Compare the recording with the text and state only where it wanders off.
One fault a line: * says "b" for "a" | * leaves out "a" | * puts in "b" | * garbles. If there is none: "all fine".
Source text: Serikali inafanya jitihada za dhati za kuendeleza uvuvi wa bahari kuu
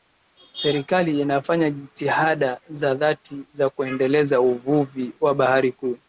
all fine